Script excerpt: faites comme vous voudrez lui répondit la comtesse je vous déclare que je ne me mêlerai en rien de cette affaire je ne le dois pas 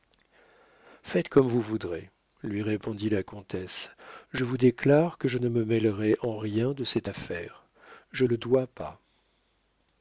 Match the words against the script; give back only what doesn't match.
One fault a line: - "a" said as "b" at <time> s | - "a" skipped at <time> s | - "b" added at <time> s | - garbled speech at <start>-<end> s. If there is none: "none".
- "ne" skipped at 8.2 s